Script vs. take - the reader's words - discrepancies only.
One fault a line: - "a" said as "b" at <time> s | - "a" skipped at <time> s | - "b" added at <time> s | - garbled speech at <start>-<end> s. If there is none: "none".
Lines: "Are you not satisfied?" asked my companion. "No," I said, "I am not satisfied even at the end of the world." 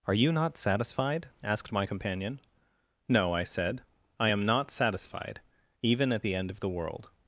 none